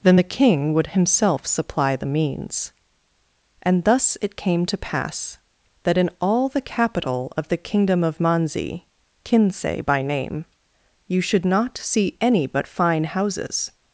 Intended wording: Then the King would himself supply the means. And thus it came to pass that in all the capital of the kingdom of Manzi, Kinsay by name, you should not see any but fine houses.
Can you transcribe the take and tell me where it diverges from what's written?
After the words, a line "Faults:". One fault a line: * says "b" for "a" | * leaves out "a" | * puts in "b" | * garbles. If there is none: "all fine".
Then the King would himself supply the means. And thus it came to pass that in all the capital of the kingdom of Manzi, Kinsay by name, you should not see any but fine houses.
Faults:
all fine